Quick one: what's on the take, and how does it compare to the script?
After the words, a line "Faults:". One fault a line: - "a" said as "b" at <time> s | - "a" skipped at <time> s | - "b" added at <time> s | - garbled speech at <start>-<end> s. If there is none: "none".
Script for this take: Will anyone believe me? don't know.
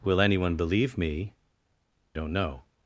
Will anyone believe me? don't know.
Faults:
none